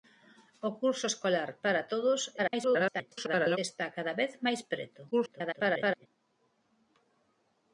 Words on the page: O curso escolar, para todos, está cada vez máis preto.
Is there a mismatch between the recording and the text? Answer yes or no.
yes